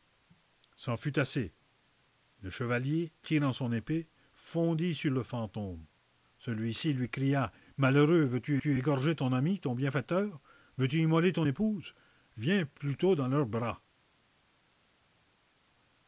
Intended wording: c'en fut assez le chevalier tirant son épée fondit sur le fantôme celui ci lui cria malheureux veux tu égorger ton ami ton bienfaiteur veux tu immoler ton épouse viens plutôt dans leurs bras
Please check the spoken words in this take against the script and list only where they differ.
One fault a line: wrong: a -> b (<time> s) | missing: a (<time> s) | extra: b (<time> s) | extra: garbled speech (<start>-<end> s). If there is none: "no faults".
extra: tu (8.6 s)